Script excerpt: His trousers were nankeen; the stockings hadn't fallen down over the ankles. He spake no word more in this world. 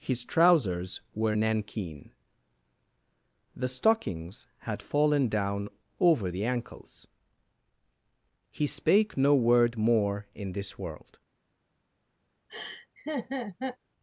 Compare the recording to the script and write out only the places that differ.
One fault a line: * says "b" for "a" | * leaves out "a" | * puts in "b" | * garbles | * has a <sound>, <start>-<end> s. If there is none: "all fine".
* says "had" for "hadn't"
* has a laugh, 12.5-13.8 s